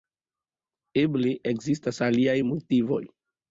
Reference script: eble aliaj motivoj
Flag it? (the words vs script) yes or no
yes